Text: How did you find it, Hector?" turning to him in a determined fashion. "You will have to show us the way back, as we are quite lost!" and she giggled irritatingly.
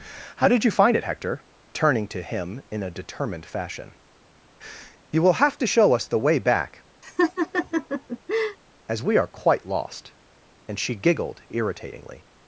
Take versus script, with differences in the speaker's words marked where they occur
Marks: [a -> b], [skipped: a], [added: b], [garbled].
How did you find it, Hector?" turning to him in a determined fashion. "You will have to show us the way back, as we are quite lost!" and she giggled irritatingly.